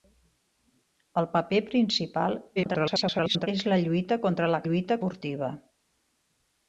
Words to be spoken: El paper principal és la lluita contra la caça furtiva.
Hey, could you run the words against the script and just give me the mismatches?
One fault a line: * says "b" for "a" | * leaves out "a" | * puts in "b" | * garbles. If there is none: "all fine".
* garbles
* says "lluita" for "caça"